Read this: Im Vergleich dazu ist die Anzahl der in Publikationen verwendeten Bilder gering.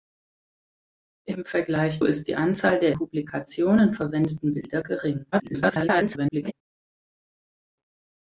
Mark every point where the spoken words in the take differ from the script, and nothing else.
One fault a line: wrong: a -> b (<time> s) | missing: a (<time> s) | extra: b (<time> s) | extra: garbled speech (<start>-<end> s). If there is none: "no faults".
missing: dazu (2.0 s)
missing: in (2.9 s)
extra: garbled speech (5.3-6.5 s)